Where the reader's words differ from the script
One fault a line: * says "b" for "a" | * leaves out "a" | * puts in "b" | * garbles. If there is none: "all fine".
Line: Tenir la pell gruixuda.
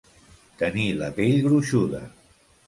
all fine